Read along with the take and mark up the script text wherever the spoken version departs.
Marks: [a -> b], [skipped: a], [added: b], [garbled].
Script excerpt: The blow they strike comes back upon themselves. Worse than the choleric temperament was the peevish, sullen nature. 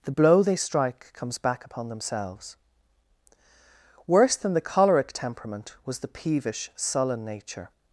The blow they strike comes back upon themselves. Worse than the choleric temperament was the peevish, sullen nature.